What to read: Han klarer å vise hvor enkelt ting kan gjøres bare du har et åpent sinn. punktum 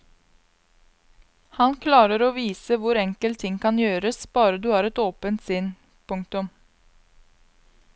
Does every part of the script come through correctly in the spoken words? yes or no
yes